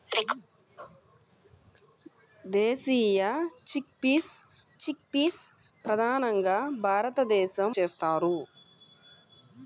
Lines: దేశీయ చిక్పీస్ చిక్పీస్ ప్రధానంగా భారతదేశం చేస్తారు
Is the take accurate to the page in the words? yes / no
yes